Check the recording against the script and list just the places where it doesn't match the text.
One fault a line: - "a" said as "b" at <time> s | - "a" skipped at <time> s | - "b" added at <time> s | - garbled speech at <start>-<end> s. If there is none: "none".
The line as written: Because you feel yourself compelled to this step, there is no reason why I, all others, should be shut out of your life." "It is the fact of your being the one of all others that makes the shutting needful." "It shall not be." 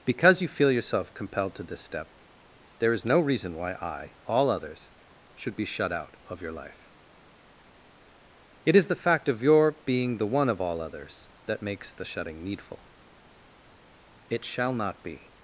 none